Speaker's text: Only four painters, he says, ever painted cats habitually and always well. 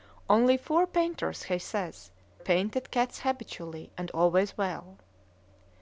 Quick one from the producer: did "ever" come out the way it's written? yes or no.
no